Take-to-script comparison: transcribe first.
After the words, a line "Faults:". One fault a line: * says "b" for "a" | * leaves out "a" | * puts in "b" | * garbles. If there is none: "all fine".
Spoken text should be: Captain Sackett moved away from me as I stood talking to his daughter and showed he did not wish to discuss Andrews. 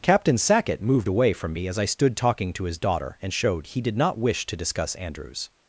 Captain Sackett moved away from me as I stood talking to his daughter and showed he did not wish to discuss Andrews.
Faults:
all fine